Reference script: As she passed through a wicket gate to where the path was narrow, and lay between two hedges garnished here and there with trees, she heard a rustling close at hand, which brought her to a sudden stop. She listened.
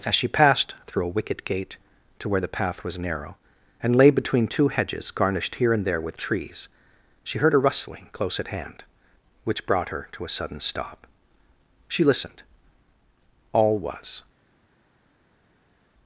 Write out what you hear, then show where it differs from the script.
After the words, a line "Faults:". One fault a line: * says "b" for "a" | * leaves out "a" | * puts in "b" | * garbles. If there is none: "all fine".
As she passed through a wicket gate to where the path was narrow, and lay between two hedges garnished here and there with trees, she heard a rustling close at hand, which brought her to a sudden stop. She listened. All was
Faults:
* puts in "All was"